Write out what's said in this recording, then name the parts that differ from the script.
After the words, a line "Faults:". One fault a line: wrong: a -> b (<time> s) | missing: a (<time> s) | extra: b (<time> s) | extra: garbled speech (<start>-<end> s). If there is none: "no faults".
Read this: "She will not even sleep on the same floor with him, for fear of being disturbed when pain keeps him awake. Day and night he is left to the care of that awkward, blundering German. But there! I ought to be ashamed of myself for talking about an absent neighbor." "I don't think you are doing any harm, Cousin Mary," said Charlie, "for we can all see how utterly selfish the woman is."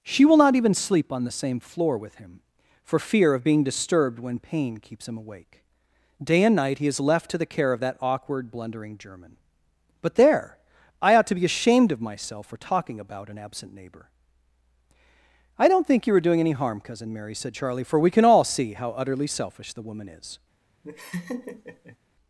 "She will not even sleep on the same floor with him, for fear of being disturbed when pain keeps him awake. Day and night he is left to the care of that awkward, blundering German. But there! I ought to be ashamed of myself for talking about an absent neighbor." "I don't think you are doing any harm, Cousin Mary," said Charlie, "for we can all see how utterly selfish the woman is."
Faults:
no faults